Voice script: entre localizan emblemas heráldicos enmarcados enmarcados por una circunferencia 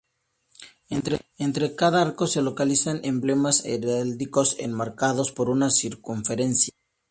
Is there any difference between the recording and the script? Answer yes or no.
yes